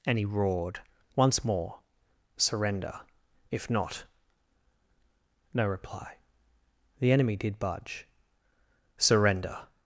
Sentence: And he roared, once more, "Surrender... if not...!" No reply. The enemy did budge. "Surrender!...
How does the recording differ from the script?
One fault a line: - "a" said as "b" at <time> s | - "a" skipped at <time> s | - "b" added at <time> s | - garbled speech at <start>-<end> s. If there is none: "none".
none